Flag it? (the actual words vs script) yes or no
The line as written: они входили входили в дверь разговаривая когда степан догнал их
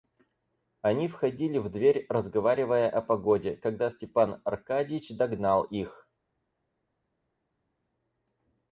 yes